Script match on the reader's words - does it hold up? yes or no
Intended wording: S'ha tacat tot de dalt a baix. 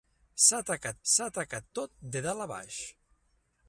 no